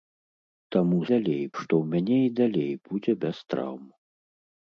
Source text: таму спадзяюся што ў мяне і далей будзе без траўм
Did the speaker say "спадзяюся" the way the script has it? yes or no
no